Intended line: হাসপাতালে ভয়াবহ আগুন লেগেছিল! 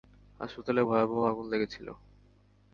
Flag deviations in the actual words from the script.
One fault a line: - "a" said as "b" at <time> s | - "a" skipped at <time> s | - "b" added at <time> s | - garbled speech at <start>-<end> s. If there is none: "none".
none